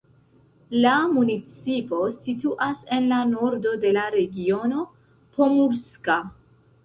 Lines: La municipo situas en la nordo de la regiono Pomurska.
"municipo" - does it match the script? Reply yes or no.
yes